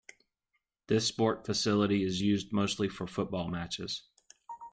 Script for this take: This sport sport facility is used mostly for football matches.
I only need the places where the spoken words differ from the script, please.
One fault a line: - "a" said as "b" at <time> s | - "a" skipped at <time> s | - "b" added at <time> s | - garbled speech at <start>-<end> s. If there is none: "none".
- "sport" skipped at 1.4 s